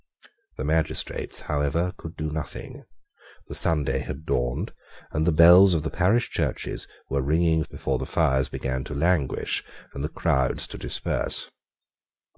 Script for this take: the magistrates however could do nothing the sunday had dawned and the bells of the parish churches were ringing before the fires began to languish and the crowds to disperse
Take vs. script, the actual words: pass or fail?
pass